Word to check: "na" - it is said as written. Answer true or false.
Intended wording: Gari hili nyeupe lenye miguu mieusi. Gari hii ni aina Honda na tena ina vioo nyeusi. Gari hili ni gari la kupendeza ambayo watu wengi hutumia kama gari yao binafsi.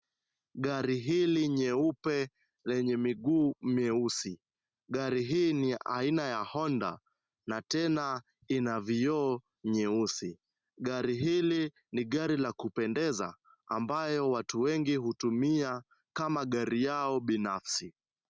true